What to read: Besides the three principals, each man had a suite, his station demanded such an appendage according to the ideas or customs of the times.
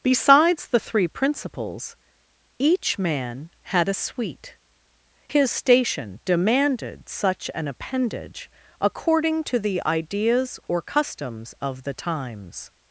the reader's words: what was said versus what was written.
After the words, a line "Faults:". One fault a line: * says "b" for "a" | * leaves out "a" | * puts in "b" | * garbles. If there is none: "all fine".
Besides the three principals, each man had a suite, his station demanded such an appendage according to the ideas or customs of the times.
Faults:
all fine